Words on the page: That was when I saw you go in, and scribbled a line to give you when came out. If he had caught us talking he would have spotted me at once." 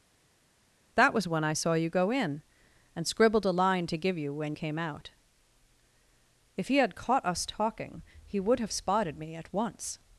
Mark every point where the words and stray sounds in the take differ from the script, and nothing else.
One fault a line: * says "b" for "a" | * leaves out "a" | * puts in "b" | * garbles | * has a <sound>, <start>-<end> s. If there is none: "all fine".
all fine